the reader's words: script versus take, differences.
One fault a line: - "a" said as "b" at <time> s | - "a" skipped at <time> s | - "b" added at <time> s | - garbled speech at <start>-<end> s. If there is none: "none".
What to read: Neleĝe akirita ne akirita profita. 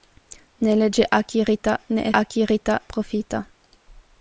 none